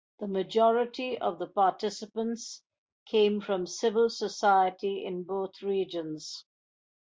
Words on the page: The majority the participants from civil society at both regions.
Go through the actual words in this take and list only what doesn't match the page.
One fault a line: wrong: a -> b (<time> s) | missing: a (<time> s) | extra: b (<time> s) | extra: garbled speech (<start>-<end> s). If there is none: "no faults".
extra: of (1.2 s)
extra: came (3.1 s)
wrong: at -> in (5.1 s)